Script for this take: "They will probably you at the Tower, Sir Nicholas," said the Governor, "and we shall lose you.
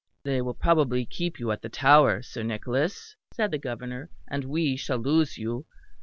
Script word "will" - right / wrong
right